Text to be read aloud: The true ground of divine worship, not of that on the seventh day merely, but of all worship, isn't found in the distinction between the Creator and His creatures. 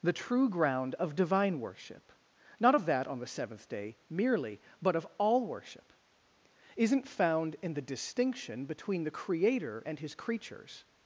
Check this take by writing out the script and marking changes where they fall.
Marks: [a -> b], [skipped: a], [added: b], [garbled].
The true ground of divine worship, not of that on the seventh day merely, but of all worship, isn't found in the distinction between the Creator and His creatures.